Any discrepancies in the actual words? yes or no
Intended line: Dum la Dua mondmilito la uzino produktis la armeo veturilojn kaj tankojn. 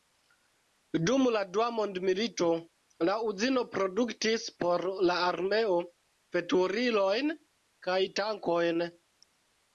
yes